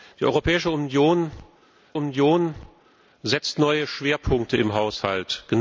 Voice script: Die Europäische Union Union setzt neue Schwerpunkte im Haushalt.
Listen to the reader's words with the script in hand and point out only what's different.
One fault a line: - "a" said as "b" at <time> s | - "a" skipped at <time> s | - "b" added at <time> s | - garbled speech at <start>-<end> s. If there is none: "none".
none